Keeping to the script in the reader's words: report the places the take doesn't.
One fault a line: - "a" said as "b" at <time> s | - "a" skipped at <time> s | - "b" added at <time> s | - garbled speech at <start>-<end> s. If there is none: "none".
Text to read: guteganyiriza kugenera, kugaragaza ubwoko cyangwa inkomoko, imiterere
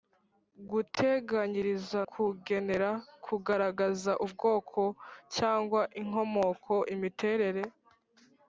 none